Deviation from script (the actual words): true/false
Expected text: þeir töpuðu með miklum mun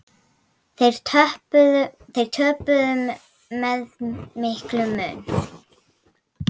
false